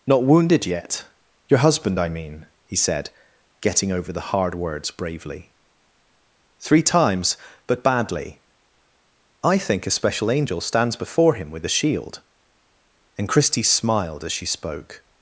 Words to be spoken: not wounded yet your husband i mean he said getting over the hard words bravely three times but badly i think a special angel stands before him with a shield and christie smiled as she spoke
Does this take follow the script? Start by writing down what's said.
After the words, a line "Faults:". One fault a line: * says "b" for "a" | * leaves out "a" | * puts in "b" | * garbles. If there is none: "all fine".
not wounded yet your husband i mean he said getting over the hard words bravely three times but badly i think a special angel stands before him with a shield and christie smiled as she spoke
Faults:
all fine